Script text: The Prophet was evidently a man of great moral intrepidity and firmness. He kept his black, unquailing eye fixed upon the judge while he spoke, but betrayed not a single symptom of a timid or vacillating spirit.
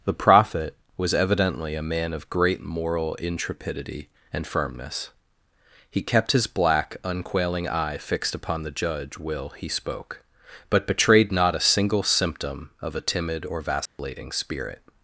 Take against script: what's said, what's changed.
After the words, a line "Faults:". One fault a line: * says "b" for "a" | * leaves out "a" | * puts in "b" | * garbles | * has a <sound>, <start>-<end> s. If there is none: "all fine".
The Prophet was evidently a man of great moral intrepidity and firmness. He kept his black, unquailing eye fixed upon the judge will he spoke, but betrayed not a single symptom of a timid or vacillating spirit.
Faults:
* says "will" for "while"
* has a dropout, 13.9-14.0 s